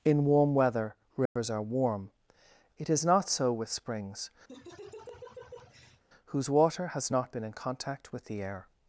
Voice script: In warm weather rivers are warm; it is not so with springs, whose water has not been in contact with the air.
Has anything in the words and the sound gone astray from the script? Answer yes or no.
yes